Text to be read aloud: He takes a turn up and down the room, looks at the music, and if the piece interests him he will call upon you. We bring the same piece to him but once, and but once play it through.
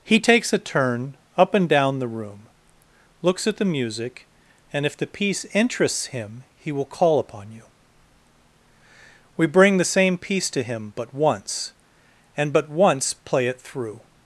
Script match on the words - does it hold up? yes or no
yes